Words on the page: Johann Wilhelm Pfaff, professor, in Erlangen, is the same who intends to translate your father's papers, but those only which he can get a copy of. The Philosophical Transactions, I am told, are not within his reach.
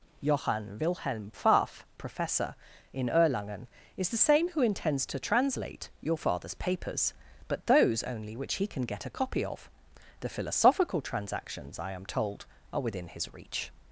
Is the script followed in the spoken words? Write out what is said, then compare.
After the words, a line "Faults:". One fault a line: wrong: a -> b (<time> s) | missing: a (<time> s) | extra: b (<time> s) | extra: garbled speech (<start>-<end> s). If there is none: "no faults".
Johann Wilhelm Pfaff, professor, in Erlangen, is the same who intends to translate your father's papers, but those only which he can get a copy of. The Philosophical Transactions, I am told, are within his reach.
Faults:
missing: not (12.8 s)